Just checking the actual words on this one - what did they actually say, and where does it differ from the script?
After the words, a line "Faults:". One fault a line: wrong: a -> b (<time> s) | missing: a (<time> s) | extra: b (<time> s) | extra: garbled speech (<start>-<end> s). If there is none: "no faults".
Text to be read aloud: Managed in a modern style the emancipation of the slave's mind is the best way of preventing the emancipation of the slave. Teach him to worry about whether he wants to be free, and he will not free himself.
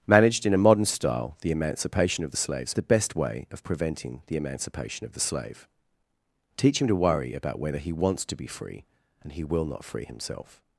Managed in a modern style the emancipation of the slave's the best way of preventing the emancipation of the slave. Teach him to worry about whether he wants to be free, and he will not free himself.
Faults:
missing: mind is (2.8 s)